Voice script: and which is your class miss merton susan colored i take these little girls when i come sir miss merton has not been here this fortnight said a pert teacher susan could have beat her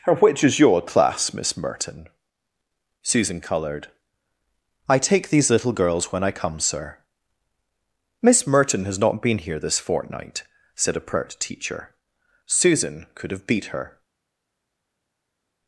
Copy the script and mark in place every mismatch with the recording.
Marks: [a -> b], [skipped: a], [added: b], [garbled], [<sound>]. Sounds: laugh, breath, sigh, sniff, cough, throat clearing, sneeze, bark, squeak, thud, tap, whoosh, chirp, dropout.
and which is your class miss merton susan colored i take these little girls when i come sir miss merton has not been here this fortnight said a pert teacher susan could have beat her